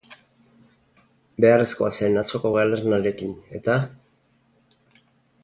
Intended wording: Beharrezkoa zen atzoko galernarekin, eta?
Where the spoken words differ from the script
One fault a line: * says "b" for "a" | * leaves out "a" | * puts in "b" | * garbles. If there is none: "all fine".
all fine